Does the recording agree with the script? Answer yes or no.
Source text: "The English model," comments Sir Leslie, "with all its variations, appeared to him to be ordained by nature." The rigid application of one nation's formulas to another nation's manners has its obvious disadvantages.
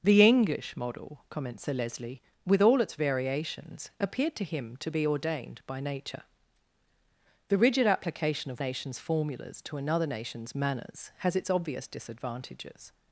no